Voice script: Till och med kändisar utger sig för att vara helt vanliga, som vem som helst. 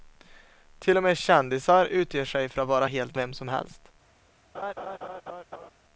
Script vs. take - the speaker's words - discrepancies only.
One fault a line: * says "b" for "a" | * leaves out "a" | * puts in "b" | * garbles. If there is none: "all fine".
* leaves out "vanliga som"